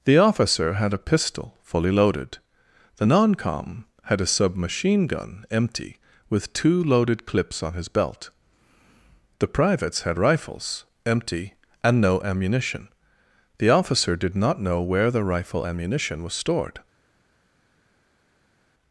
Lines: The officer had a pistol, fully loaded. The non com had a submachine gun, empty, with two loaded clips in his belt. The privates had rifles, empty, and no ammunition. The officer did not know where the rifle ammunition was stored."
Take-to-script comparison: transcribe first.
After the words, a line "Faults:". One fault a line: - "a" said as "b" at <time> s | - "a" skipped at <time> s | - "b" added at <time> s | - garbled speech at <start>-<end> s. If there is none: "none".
The officer had a pistol, fully loaded. The non com had a submachine gun, empty, with two loaded clips on his belt. The privates had rifles, empty, and no ammunition. The officer did not know where the rifle ammunition was stored."
Faults:
- "in" said as "on" at 7.6 s